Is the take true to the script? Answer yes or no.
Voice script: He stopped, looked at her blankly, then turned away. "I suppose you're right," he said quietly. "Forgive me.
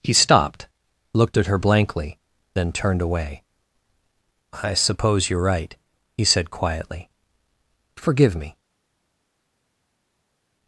yes